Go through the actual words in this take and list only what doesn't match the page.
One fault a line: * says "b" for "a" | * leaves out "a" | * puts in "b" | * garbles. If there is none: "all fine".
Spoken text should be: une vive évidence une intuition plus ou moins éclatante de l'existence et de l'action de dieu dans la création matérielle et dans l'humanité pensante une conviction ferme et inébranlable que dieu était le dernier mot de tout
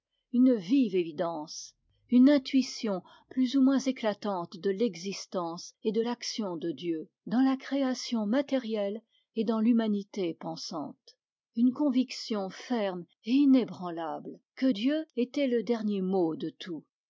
all fine